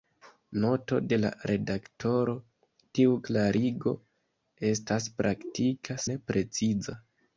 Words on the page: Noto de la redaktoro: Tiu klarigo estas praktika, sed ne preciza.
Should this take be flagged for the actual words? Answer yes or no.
yes